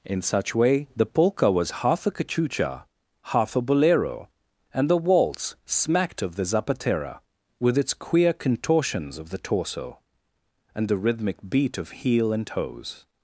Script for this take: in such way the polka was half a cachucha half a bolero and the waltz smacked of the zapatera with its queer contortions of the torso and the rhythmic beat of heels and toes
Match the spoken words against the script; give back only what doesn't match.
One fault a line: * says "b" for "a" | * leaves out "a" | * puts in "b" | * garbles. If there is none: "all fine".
* says "heel" for "heels"